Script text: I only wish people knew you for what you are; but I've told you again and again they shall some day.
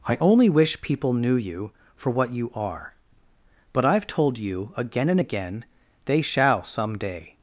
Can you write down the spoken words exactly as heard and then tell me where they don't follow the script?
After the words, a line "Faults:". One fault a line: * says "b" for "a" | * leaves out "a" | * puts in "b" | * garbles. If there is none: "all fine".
I only wish people knew you for what you are; but I've told you again and again they shall some day.
Faults:
all fine